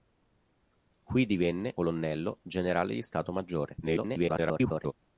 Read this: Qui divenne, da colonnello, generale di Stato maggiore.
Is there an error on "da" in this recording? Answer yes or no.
yes